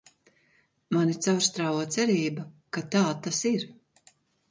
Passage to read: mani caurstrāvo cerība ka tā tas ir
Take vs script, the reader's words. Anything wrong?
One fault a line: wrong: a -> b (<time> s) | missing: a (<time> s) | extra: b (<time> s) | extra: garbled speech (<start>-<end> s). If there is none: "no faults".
no faults